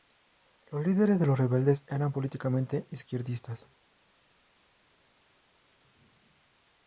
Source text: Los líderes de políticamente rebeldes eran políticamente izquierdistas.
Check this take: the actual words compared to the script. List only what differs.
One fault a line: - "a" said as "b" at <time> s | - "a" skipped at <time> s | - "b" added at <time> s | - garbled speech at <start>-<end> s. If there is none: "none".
- "políticamente" said as "los" at 1.3 s